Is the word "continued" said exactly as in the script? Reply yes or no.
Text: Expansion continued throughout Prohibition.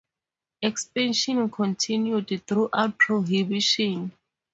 yes